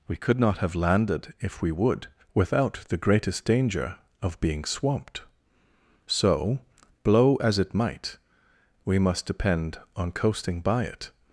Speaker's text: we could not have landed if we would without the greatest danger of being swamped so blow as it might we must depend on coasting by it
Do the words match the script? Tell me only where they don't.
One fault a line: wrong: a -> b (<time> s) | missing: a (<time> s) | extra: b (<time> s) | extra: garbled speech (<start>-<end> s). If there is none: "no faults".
no faults